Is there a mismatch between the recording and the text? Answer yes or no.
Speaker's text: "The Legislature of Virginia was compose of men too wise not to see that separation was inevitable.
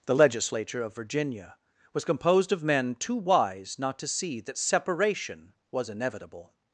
yes